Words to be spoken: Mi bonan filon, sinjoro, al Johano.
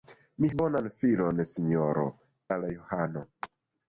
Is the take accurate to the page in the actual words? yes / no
yes